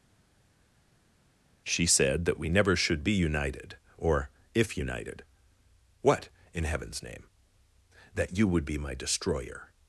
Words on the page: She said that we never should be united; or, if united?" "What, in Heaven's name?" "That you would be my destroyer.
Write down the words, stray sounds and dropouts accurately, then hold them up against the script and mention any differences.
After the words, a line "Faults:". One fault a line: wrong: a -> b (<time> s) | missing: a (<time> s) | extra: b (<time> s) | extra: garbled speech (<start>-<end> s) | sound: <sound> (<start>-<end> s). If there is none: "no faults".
She said that we never should be united; or, if united?" "What, in Heaven's name?" "That you would be my destroyer.
Faults:
no faults